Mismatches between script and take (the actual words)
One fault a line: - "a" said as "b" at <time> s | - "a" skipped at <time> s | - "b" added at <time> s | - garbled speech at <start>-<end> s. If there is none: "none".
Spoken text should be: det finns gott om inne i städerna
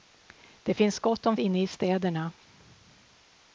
none